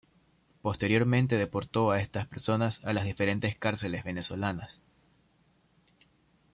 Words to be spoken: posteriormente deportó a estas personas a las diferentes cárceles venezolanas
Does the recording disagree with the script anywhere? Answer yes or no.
no